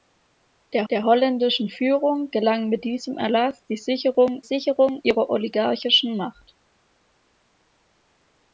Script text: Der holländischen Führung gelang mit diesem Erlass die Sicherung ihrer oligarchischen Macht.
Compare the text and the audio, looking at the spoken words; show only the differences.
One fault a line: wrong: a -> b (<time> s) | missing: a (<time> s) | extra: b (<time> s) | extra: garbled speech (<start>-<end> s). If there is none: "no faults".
extra: der (0.9 s)
extra: Sicherung (4.4 s)